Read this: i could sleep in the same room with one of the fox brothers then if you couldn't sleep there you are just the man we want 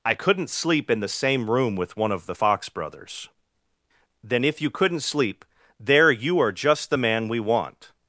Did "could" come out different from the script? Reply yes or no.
yes